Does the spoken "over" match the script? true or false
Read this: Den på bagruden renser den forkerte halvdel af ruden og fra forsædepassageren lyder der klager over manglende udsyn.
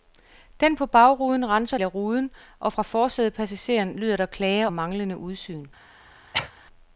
false